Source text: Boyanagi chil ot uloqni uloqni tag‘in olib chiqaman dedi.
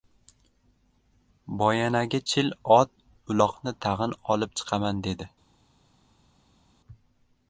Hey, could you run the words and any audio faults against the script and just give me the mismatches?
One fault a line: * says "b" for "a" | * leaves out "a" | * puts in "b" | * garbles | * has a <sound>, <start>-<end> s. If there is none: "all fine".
* leaves out "uloqni"